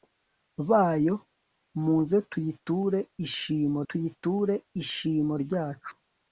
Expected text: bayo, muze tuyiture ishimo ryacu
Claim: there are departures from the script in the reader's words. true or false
true